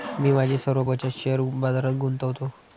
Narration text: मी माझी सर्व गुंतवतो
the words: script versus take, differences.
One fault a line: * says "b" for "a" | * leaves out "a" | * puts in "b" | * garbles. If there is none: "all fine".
* puts in "बचत शेअर बाजारात"